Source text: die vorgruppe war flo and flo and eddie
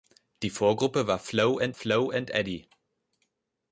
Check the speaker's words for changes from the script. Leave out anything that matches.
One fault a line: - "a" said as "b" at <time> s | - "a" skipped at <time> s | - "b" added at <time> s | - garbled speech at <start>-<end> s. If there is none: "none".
none